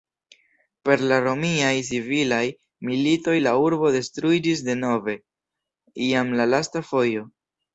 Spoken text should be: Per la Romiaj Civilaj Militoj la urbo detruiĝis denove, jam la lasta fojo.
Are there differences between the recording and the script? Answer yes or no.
no